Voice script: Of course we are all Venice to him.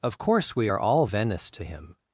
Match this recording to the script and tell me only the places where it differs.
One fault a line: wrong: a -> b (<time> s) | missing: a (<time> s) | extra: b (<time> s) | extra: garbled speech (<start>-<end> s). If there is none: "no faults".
no faults